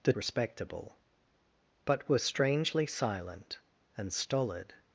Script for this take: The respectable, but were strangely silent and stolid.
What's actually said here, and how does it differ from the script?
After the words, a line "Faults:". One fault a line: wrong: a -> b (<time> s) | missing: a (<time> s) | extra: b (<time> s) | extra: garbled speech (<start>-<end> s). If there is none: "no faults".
The respectable, but were strangely silent and stolid.
Faults:
no faults